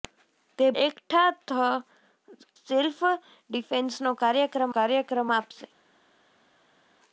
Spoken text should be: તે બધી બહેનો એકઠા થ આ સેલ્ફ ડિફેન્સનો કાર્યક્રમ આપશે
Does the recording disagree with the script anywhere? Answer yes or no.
yes